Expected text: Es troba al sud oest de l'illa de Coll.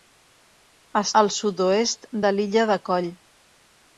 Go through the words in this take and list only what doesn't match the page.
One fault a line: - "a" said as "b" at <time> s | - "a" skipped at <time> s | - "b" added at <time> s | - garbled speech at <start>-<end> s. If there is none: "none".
- "troba" skipped at 1.1 s